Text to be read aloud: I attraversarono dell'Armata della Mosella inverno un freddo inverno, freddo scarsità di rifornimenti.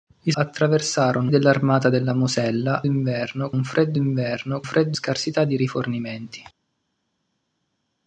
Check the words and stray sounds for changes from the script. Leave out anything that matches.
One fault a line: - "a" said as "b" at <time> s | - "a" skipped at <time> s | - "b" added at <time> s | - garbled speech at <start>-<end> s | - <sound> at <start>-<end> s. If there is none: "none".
none